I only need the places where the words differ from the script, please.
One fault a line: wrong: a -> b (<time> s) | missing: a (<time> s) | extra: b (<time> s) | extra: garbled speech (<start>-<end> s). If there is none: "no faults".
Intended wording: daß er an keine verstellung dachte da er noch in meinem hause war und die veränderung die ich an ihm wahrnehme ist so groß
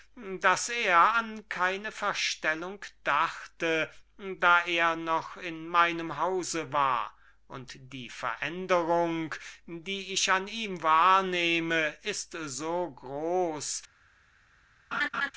no faults